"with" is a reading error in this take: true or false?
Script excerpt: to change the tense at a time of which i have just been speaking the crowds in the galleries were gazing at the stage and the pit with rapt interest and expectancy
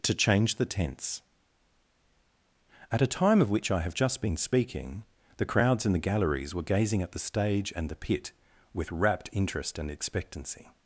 false